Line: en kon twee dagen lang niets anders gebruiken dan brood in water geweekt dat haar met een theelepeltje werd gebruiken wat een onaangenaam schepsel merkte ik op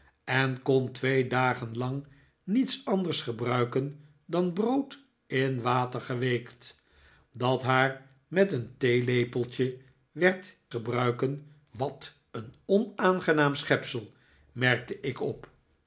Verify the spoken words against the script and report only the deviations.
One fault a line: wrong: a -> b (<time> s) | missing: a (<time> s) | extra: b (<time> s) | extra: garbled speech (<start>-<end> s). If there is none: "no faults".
no faults